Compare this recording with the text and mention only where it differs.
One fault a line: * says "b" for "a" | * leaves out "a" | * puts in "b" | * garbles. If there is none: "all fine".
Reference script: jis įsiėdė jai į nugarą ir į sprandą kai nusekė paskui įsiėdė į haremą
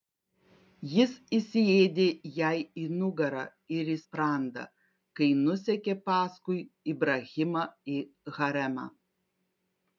* says "ibrahimą" for "įsiėdė"